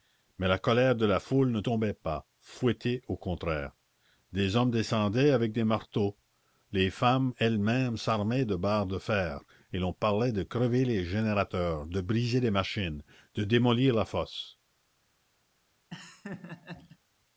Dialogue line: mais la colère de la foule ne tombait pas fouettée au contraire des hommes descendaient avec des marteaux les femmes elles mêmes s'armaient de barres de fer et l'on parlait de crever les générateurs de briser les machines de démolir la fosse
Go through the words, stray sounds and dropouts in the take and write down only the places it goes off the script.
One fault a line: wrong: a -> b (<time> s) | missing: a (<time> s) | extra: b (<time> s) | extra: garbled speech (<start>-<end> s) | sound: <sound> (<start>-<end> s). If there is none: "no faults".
sound: laugh (15.9-17.0 s)